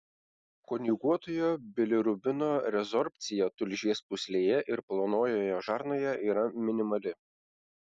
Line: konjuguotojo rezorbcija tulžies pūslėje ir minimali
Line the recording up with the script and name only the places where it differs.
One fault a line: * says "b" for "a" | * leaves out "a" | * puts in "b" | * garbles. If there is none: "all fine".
* puts in "bilirubino"
* puts in "plonojoje žarnoje yra"